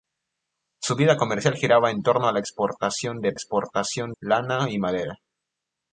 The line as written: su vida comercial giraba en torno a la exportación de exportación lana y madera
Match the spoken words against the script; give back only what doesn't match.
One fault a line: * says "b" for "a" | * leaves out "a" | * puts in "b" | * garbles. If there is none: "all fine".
all fine